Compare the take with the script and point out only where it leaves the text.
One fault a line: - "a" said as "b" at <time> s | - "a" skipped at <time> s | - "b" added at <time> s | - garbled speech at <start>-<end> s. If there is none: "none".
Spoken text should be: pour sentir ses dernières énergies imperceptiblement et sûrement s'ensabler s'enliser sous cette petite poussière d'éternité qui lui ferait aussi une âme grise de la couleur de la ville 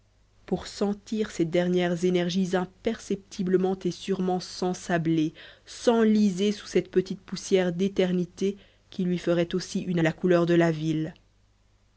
- "âme grise de" skipped at 10.0 s